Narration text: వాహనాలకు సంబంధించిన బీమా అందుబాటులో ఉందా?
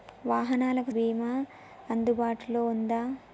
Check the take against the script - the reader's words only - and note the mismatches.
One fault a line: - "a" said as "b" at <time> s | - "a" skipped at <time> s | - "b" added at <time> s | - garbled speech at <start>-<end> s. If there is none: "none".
- "సంబంధించిన" skipped at 0.9 s